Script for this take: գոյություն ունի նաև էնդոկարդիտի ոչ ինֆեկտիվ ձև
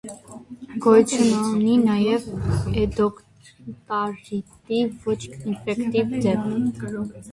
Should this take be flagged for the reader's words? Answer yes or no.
no